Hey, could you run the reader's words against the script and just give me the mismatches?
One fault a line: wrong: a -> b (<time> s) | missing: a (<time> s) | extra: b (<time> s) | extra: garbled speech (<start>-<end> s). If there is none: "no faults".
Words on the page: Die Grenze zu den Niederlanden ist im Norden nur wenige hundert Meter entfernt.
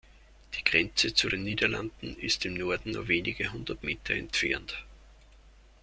no faults